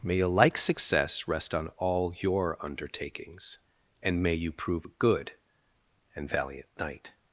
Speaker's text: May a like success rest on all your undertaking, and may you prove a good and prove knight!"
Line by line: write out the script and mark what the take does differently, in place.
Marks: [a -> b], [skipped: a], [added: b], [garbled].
May a like success rest on all your [undertaking, -> undertakings] and may you prove a good and [prove -> valiant] knight!"